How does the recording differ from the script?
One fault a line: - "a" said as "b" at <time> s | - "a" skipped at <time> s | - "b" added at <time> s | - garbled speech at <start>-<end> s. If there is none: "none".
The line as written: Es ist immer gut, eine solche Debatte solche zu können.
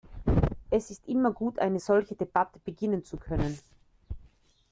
- "solche" said as "beginnen" at 2.6 s